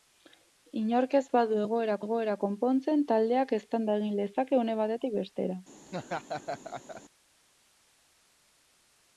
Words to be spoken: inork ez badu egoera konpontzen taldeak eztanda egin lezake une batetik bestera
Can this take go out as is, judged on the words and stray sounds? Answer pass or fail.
fail